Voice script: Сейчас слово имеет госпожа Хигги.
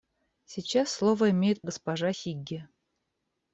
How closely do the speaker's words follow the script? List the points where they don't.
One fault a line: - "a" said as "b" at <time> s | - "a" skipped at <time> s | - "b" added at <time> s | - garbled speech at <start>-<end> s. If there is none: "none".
none